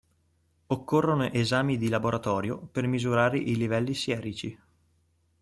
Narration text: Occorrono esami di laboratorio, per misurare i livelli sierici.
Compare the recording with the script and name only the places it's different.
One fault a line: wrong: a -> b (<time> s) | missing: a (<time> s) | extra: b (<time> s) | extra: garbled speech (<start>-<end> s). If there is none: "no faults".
no faults